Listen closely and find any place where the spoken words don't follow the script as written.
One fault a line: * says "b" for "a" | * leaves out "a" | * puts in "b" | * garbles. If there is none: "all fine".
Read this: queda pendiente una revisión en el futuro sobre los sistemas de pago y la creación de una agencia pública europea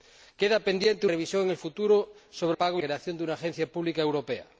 * leaves out "una"
* leaves out "los sistemas de"
* leaves out "la"